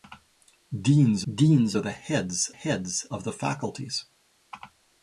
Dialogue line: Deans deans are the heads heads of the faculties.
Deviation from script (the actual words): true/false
false